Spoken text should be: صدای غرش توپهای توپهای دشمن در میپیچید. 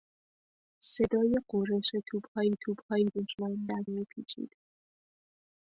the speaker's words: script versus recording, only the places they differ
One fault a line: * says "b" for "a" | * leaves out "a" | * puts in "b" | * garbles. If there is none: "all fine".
all fine